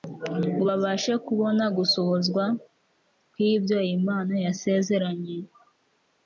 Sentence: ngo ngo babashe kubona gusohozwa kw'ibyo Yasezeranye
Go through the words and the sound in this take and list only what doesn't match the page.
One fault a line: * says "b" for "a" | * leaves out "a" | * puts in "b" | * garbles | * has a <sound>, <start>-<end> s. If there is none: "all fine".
* leaves out "ngo"
* puts in "Imana"